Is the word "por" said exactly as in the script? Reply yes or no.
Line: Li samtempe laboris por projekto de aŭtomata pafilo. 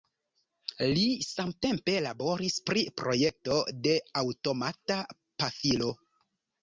no